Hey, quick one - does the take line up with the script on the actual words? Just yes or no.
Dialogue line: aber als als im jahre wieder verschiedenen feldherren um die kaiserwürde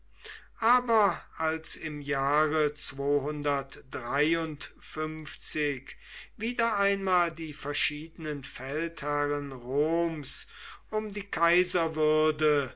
no